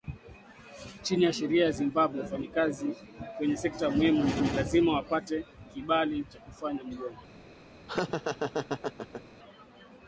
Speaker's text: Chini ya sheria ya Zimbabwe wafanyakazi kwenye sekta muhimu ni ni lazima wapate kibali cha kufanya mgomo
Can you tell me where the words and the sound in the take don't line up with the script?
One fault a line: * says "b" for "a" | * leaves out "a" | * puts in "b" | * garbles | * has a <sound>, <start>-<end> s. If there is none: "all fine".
* has a laugh, 7.9-9.2 s